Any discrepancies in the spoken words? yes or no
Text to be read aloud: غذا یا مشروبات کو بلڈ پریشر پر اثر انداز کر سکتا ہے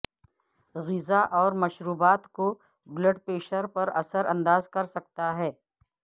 yes